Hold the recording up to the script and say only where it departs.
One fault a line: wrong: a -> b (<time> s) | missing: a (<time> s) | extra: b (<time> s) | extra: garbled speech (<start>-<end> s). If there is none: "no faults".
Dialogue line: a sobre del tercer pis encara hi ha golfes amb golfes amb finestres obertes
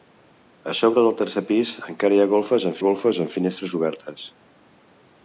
no faults